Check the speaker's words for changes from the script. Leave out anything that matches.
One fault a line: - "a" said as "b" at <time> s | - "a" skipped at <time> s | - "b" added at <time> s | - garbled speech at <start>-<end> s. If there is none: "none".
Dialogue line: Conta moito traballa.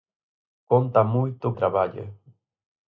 none